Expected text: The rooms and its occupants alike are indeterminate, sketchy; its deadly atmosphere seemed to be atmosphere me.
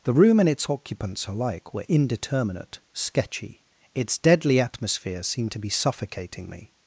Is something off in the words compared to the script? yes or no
yes